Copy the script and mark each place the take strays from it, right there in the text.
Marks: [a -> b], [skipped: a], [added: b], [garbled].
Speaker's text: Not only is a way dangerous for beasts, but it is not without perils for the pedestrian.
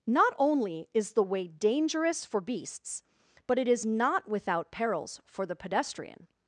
Not only is [a -> the] way dangerous for beasts, but it is not without perils for the pedestrian.